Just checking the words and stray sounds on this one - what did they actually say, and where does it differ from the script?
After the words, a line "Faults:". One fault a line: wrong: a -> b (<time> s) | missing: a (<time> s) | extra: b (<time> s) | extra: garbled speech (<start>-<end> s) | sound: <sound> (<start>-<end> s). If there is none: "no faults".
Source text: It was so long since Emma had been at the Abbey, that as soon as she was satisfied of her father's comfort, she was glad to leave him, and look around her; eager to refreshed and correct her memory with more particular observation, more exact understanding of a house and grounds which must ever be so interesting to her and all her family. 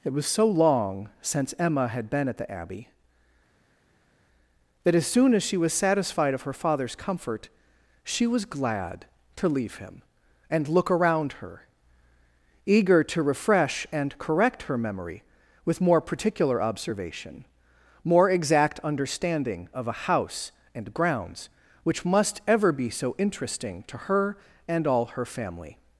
It was so long since Emma had been at the Abbey, that as soon as she was satisfied of her father's comfort, she was glad to leave him, and look around her; eager to refresh and correct her memory with more particular observation, more exact understanding of a house and grounds which must ever be so interesting to her and all her family.
Faults:
wrong: refreshed -> refresh (13.2 s)